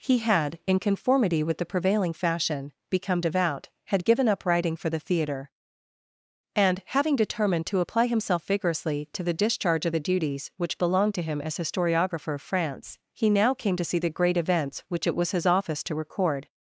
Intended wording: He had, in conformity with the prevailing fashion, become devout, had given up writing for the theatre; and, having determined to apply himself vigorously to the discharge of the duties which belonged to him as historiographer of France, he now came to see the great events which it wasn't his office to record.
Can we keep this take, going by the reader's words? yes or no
no